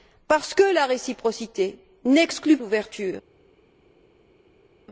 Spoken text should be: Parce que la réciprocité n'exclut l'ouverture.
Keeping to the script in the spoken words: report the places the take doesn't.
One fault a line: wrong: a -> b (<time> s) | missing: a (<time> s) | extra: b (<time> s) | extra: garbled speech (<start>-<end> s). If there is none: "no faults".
no faults